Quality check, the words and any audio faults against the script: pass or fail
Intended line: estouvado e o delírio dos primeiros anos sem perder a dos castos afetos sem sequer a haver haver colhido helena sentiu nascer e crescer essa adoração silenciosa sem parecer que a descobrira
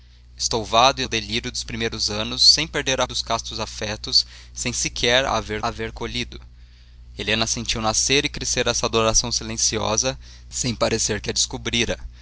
pass